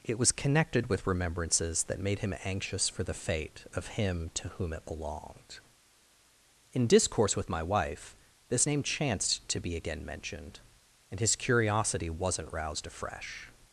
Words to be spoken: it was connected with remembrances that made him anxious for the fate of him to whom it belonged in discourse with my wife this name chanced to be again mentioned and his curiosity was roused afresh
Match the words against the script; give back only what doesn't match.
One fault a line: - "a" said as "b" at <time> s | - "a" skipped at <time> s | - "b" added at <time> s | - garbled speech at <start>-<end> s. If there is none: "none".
- "was" said as "wasn't" at 12.1 s